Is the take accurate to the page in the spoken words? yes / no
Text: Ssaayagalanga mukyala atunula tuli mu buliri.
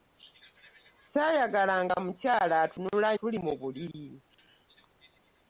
yes